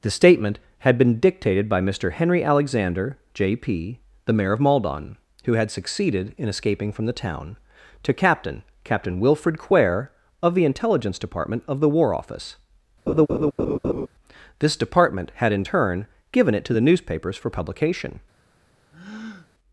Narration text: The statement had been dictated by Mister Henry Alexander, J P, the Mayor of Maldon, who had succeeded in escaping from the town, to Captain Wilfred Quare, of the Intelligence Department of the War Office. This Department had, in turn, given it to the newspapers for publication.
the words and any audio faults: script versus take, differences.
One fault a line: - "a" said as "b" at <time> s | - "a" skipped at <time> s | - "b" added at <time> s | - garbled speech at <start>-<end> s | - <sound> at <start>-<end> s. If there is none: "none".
- "Captain" added at 8.8 s
- laugh at 13.1-14.1 s
- breath at 18.9-19.5 s